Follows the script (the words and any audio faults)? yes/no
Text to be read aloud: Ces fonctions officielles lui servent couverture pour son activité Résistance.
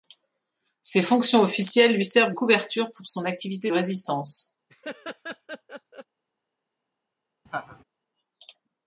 no